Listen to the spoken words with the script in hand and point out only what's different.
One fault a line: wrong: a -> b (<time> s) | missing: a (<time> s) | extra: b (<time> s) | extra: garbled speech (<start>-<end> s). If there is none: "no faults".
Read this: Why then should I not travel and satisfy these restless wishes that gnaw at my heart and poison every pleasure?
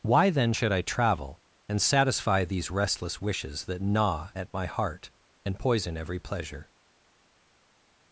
missing: not (0.8 s)